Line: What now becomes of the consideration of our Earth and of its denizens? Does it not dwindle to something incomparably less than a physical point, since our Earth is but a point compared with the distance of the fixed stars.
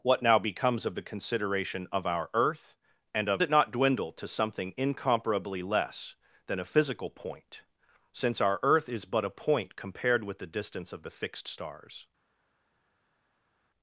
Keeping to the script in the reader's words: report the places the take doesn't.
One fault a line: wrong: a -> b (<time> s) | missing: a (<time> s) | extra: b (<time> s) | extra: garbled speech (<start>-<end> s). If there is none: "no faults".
missing: its denizens Does (3.4 s)